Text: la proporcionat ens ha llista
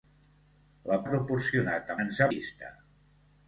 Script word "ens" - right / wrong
right